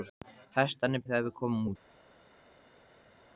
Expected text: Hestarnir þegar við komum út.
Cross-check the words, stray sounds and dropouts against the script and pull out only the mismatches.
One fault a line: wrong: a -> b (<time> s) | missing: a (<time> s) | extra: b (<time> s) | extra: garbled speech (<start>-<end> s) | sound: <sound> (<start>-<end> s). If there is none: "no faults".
no faults